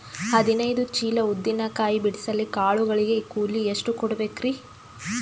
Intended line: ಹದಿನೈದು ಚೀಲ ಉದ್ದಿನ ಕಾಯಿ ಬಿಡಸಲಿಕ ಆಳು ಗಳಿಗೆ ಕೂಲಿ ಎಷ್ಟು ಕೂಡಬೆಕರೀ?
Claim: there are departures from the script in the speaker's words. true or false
false